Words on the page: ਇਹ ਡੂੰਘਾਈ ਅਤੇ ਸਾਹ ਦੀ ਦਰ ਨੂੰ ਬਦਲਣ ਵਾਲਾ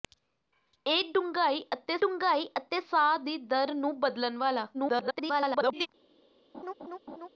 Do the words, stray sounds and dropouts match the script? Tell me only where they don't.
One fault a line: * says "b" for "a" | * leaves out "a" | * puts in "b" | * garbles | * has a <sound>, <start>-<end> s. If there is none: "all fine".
* puts in "ਡੂੰਘਾਈ ਅਤੇ"
* garbles
* has a laugh, 6.5-7.3 s